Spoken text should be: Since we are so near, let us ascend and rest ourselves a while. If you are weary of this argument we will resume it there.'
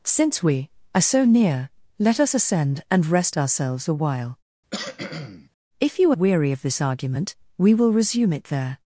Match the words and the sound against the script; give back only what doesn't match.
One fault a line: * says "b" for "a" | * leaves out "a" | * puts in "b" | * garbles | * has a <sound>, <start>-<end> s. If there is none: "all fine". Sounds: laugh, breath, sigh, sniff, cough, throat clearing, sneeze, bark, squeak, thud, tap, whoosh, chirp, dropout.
* has a cough, 4.7-5.5 s